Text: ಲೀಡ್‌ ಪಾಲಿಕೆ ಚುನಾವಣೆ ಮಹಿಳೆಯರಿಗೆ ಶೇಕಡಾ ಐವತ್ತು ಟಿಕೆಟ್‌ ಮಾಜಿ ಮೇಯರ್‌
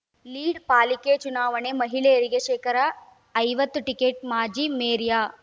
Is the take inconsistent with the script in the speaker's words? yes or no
no